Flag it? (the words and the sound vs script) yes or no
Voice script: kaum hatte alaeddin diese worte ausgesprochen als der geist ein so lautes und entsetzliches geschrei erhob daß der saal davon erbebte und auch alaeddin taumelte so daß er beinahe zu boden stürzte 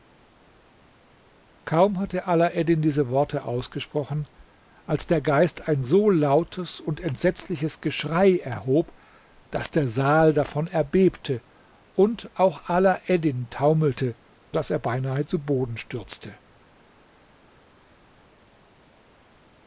yes